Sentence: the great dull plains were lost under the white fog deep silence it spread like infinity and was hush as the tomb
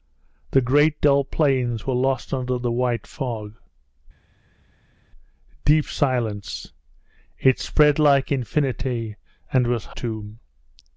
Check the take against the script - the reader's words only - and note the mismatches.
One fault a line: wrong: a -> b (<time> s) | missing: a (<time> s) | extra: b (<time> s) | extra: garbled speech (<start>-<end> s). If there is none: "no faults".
missing: hush as the (9.8 s)